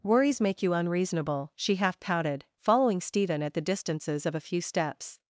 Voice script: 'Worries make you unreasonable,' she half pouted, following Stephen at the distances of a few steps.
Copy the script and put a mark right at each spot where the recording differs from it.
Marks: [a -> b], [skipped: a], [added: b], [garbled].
'Worries make you unreasonable,' she half pouted, following Stephen at the distances of a few steps.